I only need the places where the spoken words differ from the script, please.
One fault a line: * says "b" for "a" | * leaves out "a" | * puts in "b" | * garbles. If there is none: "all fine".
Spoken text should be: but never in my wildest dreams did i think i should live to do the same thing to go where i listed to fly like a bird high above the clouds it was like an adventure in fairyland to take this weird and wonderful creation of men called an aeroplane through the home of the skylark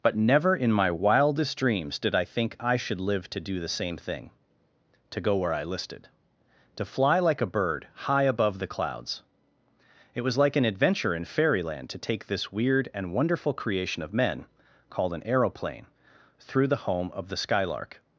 all fine